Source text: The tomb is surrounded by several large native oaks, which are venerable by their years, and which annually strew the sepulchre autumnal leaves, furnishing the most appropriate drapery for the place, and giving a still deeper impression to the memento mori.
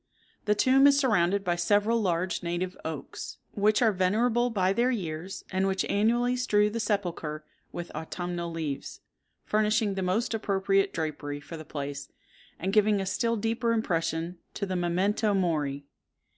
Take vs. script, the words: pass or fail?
fail